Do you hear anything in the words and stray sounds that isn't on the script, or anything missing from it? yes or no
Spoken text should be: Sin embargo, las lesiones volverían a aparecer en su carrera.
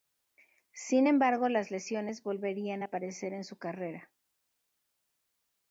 no